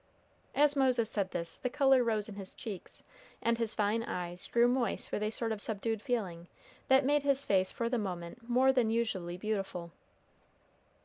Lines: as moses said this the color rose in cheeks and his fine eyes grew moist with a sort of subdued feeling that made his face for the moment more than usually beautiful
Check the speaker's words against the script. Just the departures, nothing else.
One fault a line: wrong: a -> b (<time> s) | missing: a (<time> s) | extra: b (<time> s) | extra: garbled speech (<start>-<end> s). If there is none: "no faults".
extra: his (2.3 s)